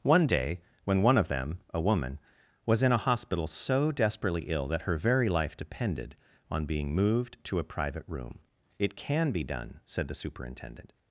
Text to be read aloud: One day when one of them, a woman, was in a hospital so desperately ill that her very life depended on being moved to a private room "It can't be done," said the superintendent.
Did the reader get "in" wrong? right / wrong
right